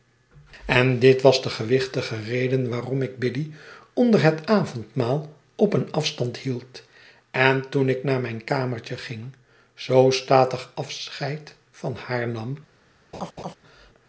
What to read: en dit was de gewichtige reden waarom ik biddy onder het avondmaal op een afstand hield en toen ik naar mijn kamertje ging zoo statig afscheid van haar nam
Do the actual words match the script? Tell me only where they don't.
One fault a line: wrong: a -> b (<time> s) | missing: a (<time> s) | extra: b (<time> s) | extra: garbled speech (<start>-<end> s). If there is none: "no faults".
no faults